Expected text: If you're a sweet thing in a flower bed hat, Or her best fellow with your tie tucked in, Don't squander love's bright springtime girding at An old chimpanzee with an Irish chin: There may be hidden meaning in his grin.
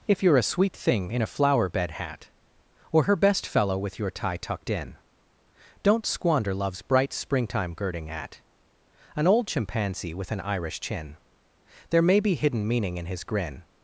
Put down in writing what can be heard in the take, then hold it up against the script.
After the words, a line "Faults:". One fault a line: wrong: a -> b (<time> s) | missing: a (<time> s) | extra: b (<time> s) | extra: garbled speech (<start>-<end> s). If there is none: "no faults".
If you're a sweet thing in a flower bed hat, Or her best fellow with your tie tucked in, Don't squander love's bright springtime girding at An old chimpanzee with an Irish chin: There may be hidden meaning in his grin.
Faults:
no faults